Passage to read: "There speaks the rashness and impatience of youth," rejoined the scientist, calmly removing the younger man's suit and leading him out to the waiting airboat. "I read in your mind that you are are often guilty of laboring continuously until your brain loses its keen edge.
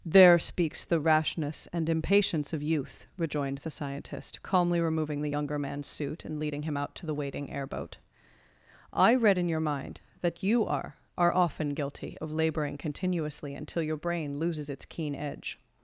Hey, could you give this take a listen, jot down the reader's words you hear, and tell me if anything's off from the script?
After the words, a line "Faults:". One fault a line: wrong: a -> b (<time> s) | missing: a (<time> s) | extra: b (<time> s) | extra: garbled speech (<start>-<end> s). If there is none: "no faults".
"There speaks the rashness and impatience of youth," rejoined the scientist, calmly removing the younger man's suit and leading him out to the waiting airboat. "I read in your mind that you are are often guilty of laboring continuously until your brain loses its keen edge.
Faults:
no faults